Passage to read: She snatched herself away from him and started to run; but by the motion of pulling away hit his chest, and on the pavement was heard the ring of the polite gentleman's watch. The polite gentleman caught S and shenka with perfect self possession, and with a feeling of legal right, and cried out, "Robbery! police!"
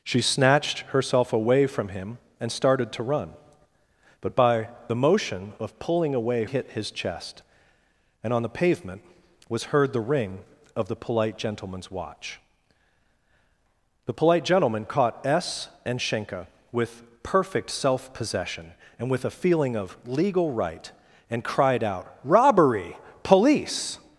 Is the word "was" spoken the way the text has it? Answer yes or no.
yes